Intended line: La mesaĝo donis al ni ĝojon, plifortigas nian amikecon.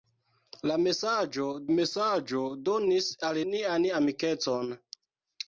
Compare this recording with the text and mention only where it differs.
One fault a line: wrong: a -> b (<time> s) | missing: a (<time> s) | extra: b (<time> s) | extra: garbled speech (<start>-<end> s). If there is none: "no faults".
extra: mesaĝo (1.8 s)
missing: ni ĝojon plifortigas (3.4 s)